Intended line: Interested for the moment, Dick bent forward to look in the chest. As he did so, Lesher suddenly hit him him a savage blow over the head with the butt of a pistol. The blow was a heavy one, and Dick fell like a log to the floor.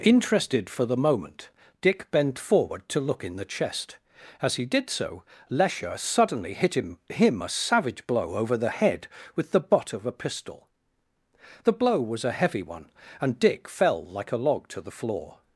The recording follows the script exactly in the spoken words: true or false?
true